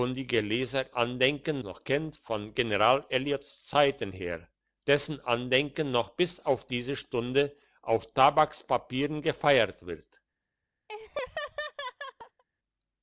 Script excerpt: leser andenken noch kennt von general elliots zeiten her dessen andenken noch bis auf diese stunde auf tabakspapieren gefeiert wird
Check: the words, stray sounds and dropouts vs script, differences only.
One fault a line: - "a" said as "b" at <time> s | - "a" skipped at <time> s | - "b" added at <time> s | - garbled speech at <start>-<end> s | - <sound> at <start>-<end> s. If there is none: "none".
- laugh at 10.9-12.4 s